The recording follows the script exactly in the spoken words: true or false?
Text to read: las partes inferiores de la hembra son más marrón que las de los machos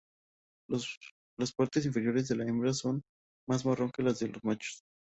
true